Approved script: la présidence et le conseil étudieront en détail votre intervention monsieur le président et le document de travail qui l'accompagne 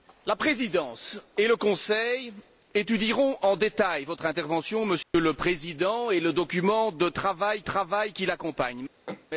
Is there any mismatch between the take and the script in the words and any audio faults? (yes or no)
yes